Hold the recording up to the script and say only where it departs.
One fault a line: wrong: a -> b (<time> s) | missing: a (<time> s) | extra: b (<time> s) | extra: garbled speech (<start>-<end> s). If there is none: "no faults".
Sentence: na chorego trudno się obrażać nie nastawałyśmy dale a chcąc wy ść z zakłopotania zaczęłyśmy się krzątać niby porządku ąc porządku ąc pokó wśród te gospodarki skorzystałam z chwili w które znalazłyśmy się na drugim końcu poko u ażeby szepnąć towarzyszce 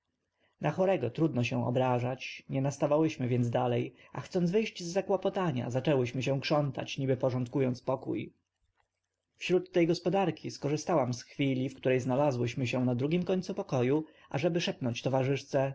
extra: więc (3.3 s)
missing: porządku ąc (7.8 s)